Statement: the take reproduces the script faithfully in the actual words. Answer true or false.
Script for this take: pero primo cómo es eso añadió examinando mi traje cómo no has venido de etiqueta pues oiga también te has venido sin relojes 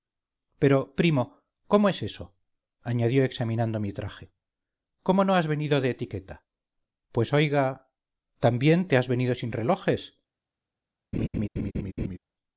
true